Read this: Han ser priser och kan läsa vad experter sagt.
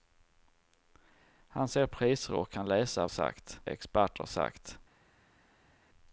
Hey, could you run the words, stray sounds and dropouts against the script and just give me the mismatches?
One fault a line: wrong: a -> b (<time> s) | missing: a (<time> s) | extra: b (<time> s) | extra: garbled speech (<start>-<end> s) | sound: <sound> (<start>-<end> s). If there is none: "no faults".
wrong: vad -> sagt (3.1 s)